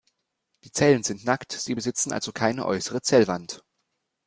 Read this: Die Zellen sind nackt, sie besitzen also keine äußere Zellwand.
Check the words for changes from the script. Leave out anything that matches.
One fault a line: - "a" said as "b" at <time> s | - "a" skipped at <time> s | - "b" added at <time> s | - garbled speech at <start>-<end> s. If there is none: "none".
none